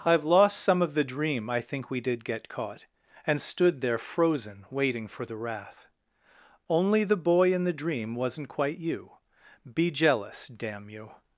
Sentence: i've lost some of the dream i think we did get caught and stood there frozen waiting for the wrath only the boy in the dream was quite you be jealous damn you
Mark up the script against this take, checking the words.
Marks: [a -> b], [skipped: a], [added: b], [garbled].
i've lost some of the dream i think we did get caught and stood there frozen waiting for the wrath only the boy in the dream [was -> wasn't] quite you be jealous damn you